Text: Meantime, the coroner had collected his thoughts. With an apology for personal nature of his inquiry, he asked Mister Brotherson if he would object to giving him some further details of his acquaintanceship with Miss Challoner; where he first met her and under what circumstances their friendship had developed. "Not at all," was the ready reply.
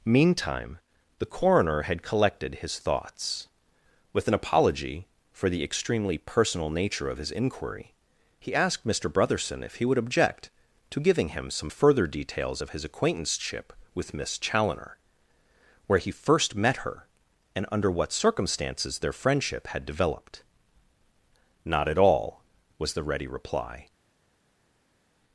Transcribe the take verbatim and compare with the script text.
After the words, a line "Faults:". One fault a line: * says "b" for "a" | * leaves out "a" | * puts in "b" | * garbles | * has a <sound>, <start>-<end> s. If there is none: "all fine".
Meantime, the coroner had collected his thoughts. With an apology for the extremely personal nature of his inquiry, he asked Mister Brotherson if he would object to giving him some further details of his acquaintanceship with Miss Challoner; where he first met her and under what circumstances their friendship had developed. "Not at all," was the ready reply.
Faults:
* puts in "the extremely"